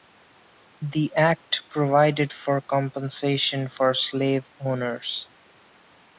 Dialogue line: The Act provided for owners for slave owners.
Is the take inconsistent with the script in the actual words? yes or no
yes